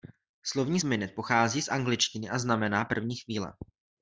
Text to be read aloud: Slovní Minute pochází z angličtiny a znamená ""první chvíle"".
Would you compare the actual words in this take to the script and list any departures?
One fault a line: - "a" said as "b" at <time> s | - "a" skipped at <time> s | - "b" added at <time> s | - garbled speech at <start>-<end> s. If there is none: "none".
none